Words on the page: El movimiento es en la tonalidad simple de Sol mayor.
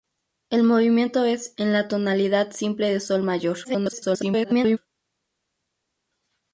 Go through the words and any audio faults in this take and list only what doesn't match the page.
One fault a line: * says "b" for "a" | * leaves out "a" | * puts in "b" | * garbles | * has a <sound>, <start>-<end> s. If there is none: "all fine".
* garbles